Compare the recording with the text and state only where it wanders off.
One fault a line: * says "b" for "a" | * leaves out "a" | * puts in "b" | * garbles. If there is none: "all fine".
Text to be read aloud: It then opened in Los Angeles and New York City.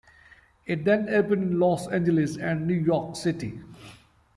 all fine